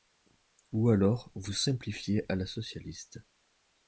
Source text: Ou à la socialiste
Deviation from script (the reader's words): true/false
true